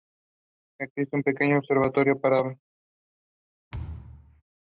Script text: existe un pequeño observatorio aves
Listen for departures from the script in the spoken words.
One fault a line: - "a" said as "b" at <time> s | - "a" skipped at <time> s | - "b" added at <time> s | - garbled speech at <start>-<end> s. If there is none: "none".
- "para" added at 2.2 s